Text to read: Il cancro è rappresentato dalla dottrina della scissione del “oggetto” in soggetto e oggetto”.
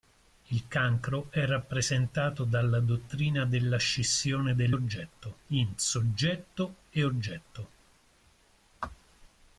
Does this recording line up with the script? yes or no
yes